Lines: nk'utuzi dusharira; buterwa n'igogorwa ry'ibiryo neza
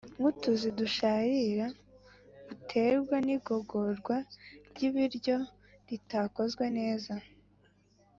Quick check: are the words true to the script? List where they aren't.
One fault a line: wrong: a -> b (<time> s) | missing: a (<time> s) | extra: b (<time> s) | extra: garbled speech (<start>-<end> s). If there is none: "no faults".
extra: ritakozwe (5.9 s)